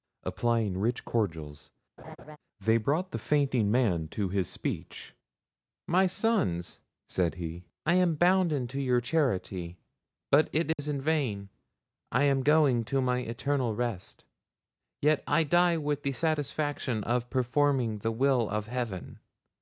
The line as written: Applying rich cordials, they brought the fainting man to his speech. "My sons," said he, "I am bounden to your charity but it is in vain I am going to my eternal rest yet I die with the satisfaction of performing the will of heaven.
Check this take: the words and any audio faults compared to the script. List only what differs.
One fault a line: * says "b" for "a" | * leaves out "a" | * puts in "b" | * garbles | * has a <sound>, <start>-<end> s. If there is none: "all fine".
* has a laugh, 2.0-2.4 s
* has a dropout, 10.7-10.8 s